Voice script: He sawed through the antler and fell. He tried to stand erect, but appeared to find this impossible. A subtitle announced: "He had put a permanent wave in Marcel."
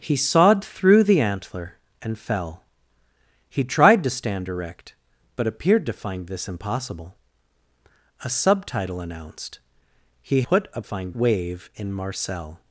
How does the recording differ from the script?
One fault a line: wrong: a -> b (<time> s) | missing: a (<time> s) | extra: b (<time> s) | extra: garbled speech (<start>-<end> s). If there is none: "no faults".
missing: had (10.4 s)
wrong: permanent -> find (10.8 s)